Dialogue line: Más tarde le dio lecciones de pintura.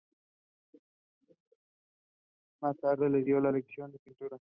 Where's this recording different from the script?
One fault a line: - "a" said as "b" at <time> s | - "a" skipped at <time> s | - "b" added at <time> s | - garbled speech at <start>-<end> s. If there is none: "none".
none